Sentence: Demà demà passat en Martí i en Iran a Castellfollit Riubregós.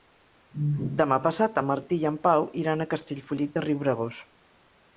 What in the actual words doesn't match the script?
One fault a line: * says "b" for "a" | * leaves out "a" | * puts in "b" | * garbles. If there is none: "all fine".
* leaves out "demà"
* puts in "Pau"
* puts in "de"